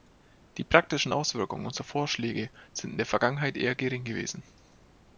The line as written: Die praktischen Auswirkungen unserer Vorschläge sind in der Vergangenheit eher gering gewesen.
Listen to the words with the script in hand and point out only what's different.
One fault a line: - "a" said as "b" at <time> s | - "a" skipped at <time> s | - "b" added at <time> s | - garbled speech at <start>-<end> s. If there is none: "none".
none